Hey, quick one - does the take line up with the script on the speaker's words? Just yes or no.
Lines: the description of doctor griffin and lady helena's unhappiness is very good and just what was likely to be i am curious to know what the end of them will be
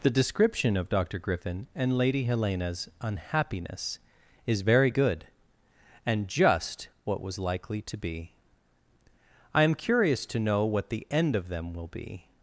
yes